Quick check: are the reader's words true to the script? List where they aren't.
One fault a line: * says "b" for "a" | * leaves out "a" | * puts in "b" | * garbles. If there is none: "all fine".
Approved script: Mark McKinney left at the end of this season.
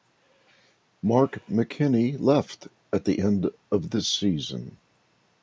all fine